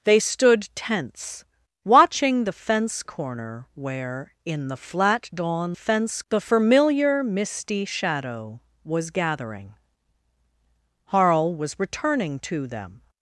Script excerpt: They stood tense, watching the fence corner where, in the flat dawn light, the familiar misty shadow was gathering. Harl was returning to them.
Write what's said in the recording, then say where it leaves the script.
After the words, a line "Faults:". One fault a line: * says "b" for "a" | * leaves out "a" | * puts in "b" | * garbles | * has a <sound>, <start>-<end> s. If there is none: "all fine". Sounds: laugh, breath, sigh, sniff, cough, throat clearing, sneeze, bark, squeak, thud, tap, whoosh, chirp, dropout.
They stood tense, watching the fence corner where, in the flat dawn fence, the familiar misty shadow was gathering. Harl was returning to them.
Faults:
* says "fence" for "light"